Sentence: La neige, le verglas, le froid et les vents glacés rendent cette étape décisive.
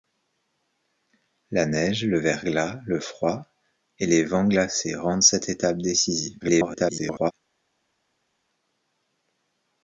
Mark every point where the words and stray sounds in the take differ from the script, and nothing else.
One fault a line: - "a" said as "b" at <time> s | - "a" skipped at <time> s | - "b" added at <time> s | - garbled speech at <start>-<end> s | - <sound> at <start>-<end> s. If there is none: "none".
- garbled speech at 6.4-7.3 s